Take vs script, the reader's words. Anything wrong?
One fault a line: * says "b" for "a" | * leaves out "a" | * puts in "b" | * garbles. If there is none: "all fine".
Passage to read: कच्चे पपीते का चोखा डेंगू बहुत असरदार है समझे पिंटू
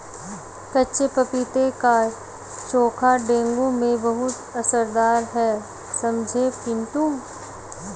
* puts in "में"